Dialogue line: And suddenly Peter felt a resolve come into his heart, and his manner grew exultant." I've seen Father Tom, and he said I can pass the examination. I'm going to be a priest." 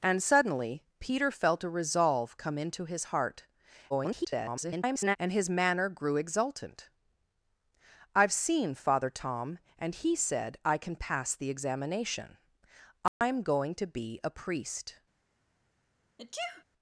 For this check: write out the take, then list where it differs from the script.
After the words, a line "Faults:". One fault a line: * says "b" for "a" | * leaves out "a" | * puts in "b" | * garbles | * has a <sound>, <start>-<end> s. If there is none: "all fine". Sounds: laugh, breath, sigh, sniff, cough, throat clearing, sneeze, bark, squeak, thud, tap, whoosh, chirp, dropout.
And suddenly Peter felt a resolve come into his heart, [garbled] and his manner grew exultant." I've seen Father Tom, and he said I can pass the examination. I'm going to be a priest."
Faults:
* garbles
* has a dropout, 13.1-13.2 s
* has a sneeze, 16.2-16.6 s